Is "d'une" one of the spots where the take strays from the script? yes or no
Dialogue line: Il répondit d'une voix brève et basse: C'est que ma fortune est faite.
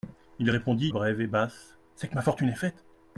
yes